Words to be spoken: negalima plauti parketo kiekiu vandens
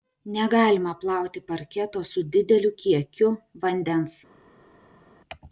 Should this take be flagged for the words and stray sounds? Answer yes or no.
yes